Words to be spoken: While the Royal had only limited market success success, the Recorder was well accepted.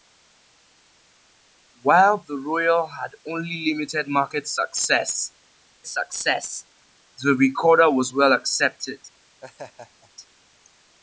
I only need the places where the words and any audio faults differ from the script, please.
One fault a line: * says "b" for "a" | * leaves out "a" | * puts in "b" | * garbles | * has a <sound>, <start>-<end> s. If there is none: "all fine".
* has a laugh, 9.4-10.1 s